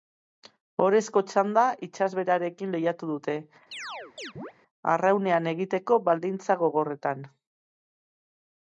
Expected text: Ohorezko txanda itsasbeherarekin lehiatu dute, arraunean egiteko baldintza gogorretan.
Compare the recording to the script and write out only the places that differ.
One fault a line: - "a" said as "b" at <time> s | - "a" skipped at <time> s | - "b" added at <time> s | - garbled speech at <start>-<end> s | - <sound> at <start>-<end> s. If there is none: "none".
- chirp at 3.7-4.5 s